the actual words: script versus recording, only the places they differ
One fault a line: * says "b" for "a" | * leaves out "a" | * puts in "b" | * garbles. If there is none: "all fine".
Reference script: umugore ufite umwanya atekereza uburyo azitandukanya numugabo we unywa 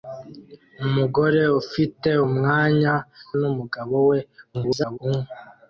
* leaves out "atekereza uburyo azitandukanya"
* garbles